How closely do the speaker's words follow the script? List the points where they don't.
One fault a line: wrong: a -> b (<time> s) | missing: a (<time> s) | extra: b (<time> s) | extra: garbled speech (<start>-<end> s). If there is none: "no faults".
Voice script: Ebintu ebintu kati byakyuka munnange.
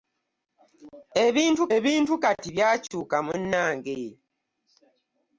no faults